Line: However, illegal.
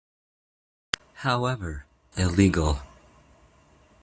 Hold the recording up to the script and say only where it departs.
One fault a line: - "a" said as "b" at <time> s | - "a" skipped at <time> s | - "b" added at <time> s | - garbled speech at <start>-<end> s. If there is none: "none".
none